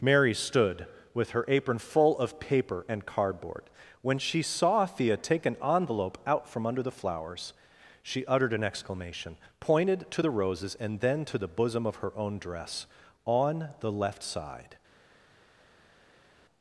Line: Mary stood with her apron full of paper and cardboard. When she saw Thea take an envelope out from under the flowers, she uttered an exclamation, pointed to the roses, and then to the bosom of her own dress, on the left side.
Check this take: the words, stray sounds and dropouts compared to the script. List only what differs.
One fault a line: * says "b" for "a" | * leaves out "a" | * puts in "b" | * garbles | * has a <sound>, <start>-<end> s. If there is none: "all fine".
all fine